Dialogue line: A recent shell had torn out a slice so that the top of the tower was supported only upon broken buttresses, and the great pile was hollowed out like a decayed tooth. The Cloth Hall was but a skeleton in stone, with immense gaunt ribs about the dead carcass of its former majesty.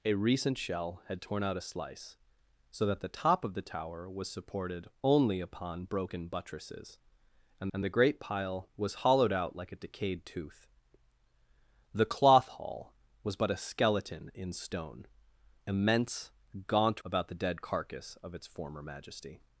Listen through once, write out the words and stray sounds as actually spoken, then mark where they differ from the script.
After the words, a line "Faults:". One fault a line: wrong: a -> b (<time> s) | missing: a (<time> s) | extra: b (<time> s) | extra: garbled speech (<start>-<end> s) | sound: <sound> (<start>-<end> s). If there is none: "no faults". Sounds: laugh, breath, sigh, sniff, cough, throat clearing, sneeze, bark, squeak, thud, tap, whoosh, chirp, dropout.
A recent shell had torn out a slice so that the top of the tower was supported only upon broken buttresses, and and the great pile was hollowed out like a decayed tooth. The Cloth Hall was but a skeleton in stone, immense gaunt about the dead carcass of its former majesty.
Faults:
extra: and (7.7 s)
missing: with (15.1 s)
missing: ribs (17.0 s)